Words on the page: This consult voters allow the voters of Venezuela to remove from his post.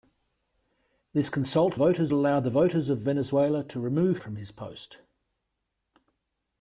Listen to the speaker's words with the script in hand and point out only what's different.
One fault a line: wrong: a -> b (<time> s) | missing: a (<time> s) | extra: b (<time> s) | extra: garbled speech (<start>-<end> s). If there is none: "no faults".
no faults